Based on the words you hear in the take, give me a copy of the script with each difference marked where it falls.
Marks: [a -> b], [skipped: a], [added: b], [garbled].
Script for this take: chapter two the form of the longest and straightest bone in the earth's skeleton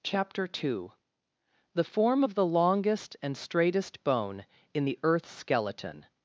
chapter two the form of the longest and straightest bone in the earth's skeleton